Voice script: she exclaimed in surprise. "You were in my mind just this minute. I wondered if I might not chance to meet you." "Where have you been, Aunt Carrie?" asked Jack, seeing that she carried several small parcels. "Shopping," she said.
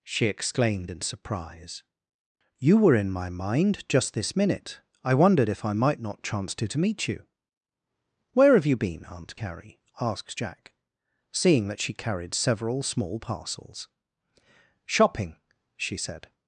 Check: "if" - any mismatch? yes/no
no